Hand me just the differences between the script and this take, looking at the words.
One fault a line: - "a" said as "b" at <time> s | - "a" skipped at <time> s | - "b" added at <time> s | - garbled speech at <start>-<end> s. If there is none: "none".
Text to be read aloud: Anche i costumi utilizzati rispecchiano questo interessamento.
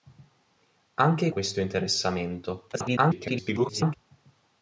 - "costumi utilizzati rispecchiano" skipped at 1.3 s
- garbled speech at 2.7-3.9 s